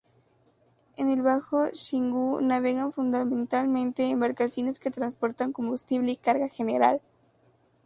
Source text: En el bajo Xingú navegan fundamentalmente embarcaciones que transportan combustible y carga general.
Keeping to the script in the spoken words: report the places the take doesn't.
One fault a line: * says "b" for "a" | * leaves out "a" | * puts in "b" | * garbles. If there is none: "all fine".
all fine